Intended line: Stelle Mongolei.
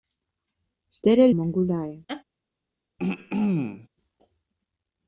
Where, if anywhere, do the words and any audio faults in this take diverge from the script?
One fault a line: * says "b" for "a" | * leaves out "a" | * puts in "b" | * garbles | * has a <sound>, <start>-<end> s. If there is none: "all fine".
* has a laugh, 2.1-2.2 s
* has a throat clearing, 3.0-3.9 s